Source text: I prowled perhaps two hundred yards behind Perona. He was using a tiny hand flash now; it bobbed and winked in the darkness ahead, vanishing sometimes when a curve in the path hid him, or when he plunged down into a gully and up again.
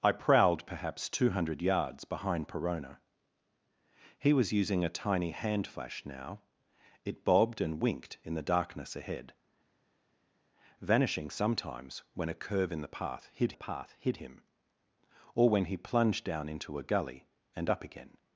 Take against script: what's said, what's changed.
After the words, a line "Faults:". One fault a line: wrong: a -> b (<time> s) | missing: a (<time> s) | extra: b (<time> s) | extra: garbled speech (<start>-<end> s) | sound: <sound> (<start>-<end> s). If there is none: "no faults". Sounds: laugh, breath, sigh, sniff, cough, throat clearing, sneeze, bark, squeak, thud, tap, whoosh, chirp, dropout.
I prowled perhaps two hundred yards behind Perona. He was using a tiny hand flash now; it bobbed and winked in the darkness ahead, vanishing sometimes when a curve in the path hid the path hid him, or when he plunged down into a gully and up again.
Faults:
extra: the path hid (13.5 s)